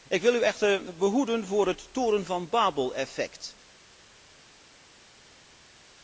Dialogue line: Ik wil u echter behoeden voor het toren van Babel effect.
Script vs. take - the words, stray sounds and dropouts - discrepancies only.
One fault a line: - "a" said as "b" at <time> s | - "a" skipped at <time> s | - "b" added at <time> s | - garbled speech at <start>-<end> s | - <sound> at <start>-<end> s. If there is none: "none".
none